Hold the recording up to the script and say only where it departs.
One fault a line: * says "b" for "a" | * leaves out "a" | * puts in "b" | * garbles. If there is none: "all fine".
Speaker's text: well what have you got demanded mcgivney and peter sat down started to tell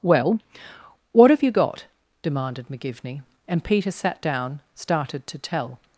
all fine